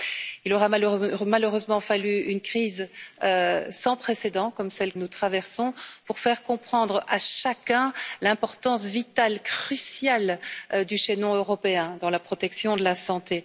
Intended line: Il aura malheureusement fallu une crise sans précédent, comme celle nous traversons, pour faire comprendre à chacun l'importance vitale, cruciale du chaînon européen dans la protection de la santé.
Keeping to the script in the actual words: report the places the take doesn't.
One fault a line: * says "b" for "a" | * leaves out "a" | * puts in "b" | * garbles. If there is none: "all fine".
all fine